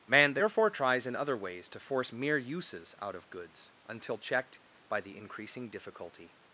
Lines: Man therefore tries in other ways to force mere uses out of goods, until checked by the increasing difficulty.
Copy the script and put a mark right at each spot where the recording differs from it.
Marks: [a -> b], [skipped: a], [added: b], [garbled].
Man therefore tries in other ways to force mere uses out of goods, until checked by the increasing difficulty.